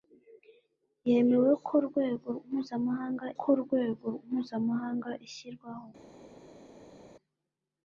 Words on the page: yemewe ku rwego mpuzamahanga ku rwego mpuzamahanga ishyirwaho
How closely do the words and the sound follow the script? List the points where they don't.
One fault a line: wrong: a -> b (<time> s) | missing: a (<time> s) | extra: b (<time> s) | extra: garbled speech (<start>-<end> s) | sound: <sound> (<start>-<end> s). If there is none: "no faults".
no faults